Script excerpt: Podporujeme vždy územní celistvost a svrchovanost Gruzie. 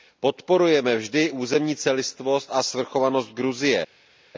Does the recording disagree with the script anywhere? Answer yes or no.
no